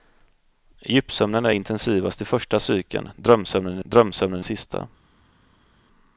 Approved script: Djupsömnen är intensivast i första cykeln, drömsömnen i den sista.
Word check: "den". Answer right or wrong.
wrong